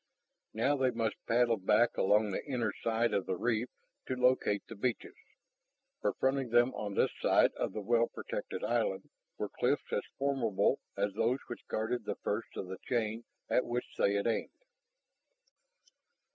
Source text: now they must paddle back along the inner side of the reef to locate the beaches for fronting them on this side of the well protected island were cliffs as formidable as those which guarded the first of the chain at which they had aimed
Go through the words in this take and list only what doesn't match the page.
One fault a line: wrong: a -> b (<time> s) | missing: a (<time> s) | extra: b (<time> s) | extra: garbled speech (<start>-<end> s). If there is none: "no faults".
no faults